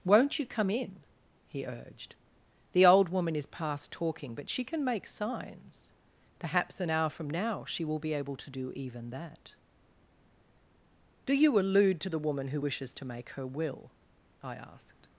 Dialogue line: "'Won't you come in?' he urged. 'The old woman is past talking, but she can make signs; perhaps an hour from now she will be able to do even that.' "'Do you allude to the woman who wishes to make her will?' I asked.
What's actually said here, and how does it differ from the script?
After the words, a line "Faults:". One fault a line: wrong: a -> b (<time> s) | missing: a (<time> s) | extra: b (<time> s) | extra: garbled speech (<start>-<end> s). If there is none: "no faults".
"'Won't you come in?' he urged. 'The old woman is past talking, but she can make signs; perhaps an hour from now she will be able to do even that.' "'Do you allude to the woman who wishes to make her will?' I asked.
Faults:
no faults